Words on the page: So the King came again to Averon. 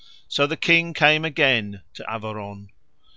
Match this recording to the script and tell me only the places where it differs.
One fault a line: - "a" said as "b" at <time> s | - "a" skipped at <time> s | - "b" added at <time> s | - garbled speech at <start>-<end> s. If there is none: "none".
none